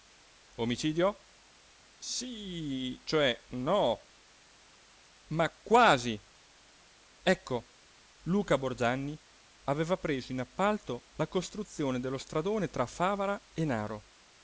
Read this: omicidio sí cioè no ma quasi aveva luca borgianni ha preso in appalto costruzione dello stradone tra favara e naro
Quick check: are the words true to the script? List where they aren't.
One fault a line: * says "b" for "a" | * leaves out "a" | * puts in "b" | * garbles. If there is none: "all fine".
* says "ecco" for "aveva"
* says "aveva" for "ha"
* puts in "la"